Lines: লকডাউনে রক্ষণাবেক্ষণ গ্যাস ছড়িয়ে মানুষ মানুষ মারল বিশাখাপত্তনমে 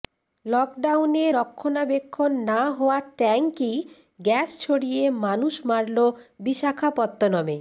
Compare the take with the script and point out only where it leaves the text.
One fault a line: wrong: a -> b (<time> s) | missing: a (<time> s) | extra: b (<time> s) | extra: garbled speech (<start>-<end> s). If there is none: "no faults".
extra: না হওয়া ট্যাঙ্কই (2.5 s)
missing: মানুষ (5.5 s)